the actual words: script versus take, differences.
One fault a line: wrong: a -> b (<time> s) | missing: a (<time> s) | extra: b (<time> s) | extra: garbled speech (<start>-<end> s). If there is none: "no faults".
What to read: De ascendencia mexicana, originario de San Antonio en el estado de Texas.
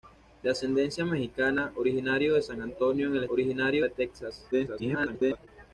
wrong: estado -> originario (3.3 s)
extra: garbled speech (4.5-5.5 s)